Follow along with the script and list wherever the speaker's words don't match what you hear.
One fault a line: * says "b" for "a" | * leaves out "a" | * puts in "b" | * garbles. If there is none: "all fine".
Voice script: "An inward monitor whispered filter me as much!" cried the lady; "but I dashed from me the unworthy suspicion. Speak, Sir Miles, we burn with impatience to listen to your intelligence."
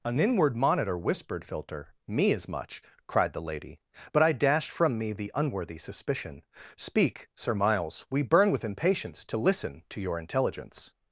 all fine